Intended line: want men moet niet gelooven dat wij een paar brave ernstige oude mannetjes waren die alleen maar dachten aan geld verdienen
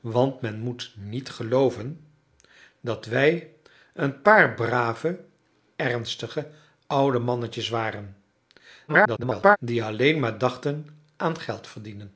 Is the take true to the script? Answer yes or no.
no